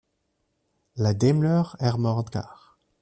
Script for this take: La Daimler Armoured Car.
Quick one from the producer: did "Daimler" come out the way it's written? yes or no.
yes